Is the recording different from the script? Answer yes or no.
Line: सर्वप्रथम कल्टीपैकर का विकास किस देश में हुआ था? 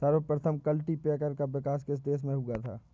no